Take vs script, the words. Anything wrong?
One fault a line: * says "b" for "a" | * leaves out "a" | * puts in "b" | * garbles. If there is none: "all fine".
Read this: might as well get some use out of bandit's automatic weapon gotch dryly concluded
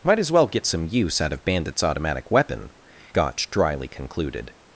all fine